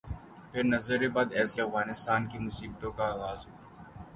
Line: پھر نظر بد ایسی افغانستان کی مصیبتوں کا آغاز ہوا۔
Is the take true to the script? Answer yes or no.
yes